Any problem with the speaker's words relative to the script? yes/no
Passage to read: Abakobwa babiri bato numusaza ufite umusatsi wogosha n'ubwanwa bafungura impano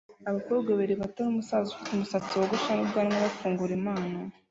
no